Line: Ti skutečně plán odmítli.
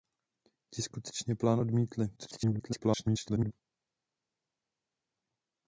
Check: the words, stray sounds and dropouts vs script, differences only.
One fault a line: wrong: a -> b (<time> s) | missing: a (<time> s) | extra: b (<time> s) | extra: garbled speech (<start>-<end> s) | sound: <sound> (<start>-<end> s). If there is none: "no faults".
extra: garbled speech (2.2-3.5 s)